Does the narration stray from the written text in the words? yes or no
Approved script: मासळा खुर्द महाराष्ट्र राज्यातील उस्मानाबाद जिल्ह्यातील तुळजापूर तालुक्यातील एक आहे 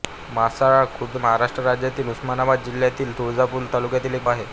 no